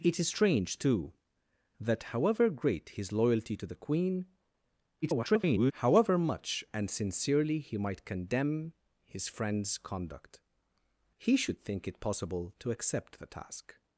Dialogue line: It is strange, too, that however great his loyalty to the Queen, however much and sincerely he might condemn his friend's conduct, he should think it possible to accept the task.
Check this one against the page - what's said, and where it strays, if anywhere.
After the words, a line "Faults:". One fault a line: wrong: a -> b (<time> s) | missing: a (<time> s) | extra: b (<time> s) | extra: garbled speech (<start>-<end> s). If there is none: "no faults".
It is strange, too, that however great his loyalty to the Queen, [garbled] however much and sincerely he might condemn his friend's conduct, he should think it possible to accept the task.
Faults:
extra: garbled speech (5.0-5.7 s)